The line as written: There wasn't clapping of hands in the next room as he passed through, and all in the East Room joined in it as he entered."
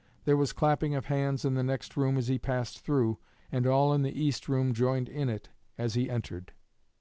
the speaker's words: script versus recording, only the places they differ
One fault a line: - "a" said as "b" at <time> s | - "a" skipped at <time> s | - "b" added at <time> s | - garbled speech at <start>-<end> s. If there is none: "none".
- "wasn't" said as "was" at 0.3 s